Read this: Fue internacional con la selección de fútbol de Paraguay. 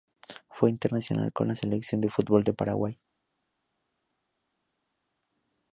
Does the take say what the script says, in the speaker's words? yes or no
yes